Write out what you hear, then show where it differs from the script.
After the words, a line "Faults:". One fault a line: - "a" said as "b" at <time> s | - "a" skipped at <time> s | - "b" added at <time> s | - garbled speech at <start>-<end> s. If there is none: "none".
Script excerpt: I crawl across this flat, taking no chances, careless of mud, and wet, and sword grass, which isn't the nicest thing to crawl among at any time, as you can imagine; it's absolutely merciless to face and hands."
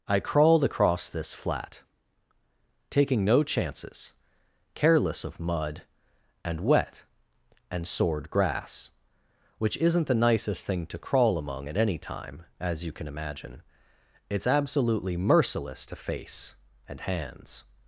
I crawled across this flat, taking no chances, careless of mud, and wet, and sword grass, which isn't the nicest thing to crawl among at any time, as you can imagine; it's absolutely merciless to face and hands."
Faults:
- "crawl" said as "crawled" at 0.2 s